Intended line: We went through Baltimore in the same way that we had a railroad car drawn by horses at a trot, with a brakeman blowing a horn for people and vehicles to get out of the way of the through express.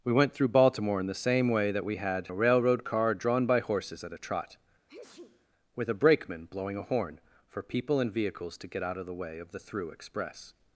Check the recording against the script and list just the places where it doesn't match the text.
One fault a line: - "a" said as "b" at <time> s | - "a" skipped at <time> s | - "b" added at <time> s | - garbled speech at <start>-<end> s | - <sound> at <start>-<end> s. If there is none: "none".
- sneeze at 4.9-5.5 s